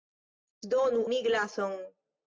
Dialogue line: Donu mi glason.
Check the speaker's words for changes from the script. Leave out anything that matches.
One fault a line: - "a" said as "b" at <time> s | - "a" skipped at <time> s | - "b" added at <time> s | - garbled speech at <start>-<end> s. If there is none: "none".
none